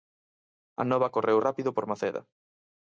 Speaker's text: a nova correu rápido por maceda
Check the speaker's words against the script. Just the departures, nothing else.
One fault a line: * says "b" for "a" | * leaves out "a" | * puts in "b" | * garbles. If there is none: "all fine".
all fine